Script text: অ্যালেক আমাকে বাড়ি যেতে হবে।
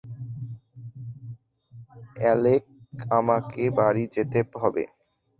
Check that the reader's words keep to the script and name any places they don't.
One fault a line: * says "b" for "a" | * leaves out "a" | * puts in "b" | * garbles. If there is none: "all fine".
all fine